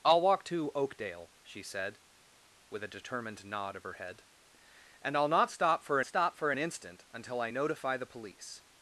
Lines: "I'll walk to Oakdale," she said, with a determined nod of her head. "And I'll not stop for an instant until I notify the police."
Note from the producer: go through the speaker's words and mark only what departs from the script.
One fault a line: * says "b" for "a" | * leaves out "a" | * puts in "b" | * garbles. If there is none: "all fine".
* puts in "stop for"